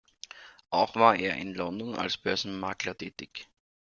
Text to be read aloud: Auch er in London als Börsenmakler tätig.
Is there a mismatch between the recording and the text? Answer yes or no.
yes